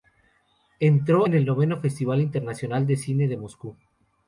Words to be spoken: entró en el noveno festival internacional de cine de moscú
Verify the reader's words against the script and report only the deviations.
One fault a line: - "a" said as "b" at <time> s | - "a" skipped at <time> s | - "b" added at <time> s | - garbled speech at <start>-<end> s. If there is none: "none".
none